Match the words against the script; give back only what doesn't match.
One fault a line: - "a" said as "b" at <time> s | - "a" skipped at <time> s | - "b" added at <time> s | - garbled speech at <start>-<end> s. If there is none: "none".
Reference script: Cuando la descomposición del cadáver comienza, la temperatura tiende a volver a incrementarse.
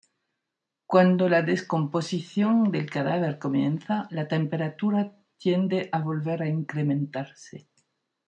none